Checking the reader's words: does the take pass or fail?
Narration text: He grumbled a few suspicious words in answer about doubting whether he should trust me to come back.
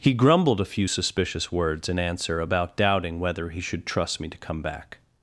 pass